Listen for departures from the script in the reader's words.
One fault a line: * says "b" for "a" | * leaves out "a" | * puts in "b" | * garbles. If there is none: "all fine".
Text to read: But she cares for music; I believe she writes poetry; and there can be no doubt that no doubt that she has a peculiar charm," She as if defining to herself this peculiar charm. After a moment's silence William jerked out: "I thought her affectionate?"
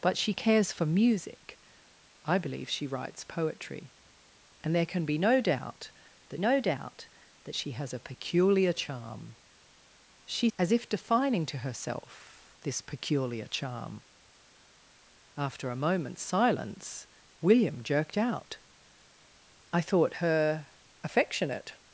all fine